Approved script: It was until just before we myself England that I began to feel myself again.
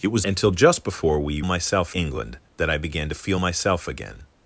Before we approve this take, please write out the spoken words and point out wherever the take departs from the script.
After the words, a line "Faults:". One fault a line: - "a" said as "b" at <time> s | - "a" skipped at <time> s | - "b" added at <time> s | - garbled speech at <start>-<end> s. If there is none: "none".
It was until just before we myself England that I began to feel myself again.
Faults:
none